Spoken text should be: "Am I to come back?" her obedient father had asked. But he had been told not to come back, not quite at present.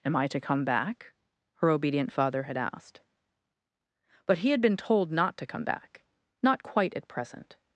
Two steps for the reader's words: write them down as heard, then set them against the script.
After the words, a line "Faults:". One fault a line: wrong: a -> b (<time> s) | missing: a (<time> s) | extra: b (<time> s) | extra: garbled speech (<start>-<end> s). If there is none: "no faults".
"Am I to come back?" her obedient father had asked. But he had been told not to come back, not quite at present.
Faults:
no faults